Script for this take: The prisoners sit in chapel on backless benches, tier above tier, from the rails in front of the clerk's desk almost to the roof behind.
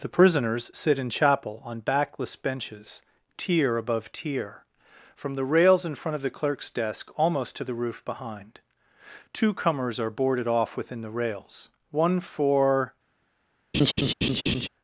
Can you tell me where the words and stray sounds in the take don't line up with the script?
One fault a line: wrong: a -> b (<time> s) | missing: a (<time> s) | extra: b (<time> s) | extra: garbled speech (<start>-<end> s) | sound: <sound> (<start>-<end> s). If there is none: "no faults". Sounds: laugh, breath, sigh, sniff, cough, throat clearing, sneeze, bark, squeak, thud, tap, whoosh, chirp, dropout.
extra: Two comers are boarded off within the rails one for (9.3 s)
sound: laugh (13.7-14.7 s)